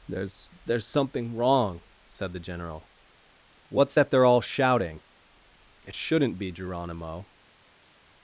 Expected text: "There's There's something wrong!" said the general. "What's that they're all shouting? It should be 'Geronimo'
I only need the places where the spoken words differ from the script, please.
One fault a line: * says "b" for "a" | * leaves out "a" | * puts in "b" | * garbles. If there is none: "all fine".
* says "shouldn't" for "should"